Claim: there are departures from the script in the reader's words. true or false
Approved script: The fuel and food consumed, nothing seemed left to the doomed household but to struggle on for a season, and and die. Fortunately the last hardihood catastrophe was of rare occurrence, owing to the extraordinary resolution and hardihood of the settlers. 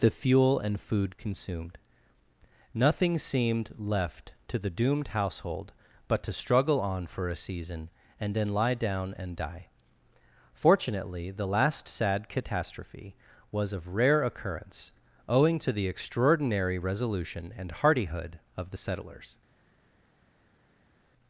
true